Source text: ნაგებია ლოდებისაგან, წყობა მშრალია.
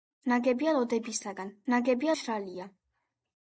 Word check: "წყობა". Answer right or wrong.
wrong